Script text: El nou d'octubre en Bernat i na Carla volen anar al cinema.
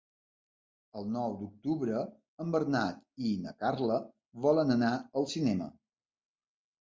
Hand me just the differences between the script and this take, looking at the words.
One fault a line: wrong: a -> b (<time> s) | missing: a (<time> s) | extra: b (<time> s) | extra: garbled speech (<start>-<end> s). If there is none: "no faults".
no faults